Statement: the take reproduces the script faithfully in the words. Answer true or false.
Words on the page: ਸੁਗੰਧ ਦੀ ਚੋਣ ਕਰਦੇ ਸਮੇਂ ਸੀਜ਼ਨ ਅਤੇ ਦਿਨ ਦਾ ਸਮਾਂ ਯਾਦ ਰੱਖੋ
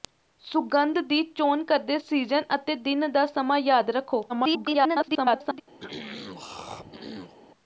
false